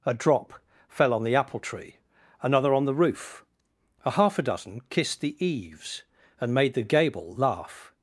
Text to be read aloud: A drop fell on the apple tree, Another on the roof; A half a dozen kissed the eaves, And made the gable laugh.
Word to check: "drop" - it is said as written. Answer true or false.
true